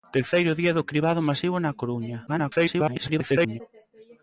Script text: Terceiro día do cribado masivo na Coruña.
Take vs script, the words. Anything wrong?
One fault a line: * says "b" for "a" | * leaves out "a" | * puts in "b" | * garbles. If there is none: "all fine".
* garbles